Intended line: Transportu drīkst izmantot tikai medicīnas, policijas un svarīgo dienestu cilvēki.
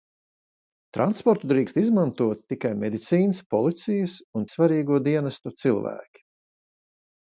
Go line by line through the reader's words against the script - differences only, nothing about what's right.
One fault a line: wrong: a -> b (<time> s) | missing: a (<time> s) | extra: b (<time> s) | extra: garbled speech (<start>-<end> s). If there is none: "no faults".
no faults